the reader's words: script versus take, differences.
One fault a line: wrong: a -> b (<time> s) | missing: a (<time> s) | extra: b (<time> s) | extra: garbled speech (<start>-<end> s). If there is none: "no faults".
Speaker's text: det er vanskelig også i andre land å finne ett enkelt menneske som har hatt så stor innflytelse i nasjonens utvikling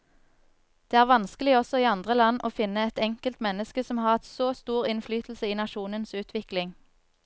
no faults